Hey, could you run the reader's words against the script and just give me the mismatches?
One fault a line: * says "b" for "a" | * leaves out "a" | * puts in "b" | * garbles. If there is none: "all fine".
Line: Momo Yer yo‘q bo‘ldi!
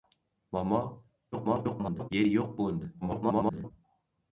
* garbles
* garbles